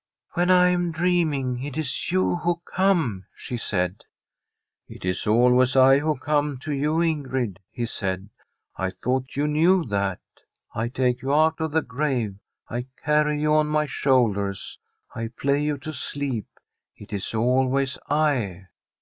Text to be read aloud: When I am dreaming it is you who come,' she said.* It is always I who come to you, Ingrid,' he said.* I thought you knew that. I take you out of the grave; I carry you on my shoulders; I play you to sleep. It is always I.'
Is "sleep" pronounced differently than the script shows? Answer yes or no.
no